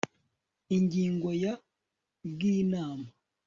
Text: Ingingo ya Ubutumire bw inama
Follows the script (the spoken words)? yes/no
no